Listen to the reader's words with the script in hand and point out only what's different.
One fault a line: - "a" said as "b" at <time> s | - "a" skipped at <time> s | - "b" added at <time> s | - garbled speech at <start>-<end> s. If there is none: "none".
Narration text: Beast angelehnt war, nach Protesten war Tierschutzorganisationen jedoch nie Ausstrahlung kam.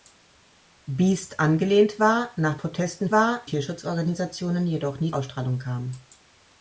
none